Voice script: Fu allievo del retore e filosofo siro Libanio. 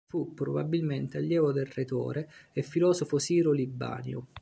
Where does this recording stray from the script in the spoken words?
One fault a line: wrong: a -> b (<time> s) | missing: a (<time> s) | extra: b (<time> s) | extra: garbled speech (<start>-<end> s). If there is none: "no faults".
extra: probabilmente (0.3 s)